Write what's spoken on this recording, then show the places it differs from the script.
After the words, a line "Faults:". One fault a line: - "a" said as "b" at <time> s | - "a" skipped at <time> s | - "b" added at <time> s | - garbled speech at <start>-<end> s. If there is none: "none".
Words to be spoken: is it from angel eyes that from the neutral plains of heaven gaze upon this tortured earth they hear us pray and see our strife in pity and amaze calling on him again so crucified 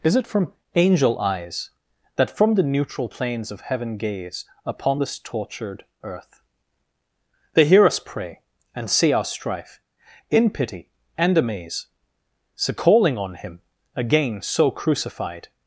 is it from angel eyes that from the neutral plains of heaven gaze upon this tortured earth they hear us pray and see our strife in pity and amaze so calling on him again so crucified
Faults:
- "so" added at 12.5 s